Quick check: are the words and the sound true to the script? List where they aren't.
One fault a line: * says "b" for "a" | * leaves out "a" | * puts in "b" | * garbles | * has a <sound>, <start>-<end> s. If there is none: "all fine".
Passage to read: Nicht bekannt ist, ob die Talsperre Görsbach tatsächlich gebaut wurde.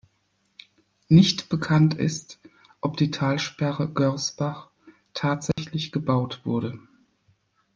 * has a dropout, 5.5-5.6 s